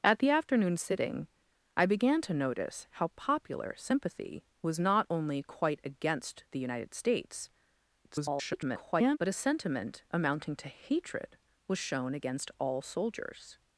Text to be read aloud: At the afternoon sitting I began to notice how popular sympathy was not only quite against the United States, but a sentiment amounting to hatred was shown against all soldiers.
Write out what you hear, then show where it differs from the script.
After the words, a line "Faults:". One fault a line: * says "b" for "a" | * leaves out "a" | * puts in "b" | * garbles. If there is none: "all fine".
At the afternoon sitting I began to notice how popular sympathy was not only quite against the United States, [garbled] but a sentiment amounting to hatred was shown against all soldiers.
Faults:
* garbles